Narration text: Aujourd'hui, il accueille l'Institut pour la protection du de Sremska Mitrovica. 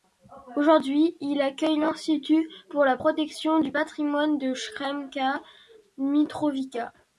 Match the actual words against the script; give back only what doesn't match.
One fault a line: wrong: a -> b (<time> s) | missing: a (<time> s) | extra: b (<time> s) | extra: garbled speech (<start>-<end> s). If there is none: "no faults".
extra: patrimoine (3.7 s)